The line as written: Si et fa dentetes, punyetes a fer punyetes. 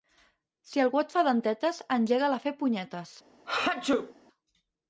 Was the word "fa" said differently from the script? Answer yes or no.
no